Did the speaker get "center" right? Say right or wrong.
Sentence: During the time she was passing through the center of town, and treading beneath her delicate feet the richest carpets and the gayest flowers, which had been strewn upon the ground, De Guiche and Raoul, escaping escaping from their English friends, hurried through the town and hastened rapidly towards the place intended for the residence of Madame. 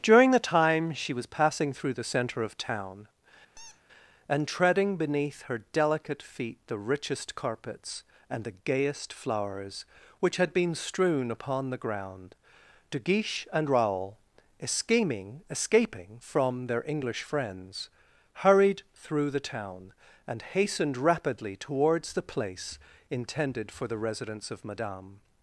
right